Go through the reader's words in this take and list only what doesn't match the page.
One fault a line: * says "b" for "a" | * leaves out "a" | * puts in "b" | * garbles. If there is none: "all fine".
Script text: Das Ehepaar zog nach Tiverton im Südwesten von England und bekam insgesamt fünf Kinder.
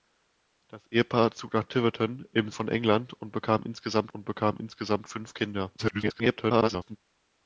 * leaves out "Südwesten"
* puts in "und bekam insgesamt"
* garbles